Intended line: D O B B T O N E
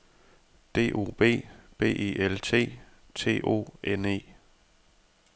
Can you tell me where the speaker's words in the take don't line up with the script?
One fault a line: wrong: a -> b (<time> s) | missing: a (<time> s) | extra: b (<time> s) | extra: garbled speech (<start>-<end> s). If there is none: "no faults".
extra: E L T (1.9 s)